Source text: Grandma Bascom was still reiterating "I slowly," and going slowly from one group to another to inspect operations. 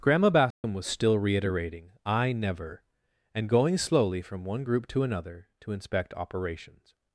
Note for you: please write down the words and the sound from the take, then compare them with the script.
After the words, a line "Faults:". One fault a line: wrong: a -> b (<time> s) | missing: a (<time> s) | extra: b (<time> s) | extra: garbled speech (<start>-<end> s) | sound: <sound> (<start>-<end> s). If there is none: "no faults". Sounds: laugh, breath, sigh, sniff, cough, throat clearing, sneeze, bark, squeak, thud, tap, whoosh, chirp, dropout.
Grandma Bascom was still reiterating "I never," and going slowly from one group to another to inspect operations.
Faults:
sound: dropout (0.5-0.6 s)
wrong: slowly -> never (2.3 s)